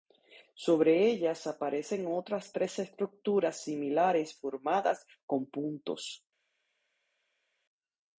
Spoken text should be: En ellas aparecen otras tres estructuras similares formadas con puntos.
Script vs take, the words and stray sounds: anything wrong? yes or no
yes